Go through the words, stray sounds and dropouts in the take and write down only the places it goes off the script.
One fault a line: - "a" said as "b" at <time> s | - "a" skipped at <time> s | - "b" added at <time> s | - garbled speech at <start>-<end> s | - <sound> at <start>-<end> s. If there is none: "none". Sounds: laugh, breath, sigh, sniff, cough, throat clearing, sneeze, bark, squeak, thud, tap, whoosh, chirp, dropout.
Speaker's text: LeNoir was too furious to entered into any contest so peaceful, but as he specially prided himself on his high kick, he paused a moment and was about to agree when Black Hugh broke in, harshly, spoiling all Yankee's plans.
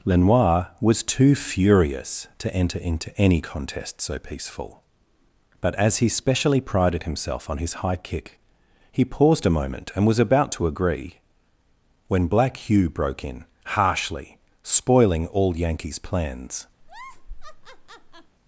- "entered" said as "enter" at 2.5 s
- laugh at 16.8-18.4 s